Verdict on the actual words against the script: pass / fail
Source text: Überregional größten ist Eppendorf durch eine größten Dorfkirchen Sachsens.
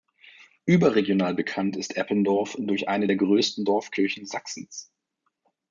fail